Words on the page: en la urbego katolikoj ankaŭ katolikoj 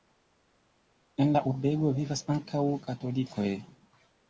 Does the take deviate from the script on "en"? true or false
false